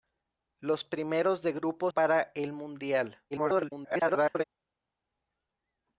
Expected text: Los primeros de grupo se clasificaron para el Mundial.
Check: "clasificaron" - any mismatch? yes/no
yes